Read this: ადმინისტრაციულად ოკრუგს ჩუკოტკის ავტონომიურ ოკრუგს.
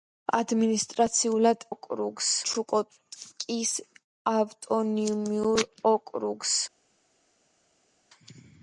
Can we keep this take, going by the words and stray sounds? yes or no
yes